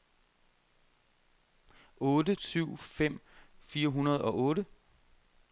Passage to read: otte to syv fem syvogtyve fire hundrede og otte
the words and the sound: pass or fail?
fail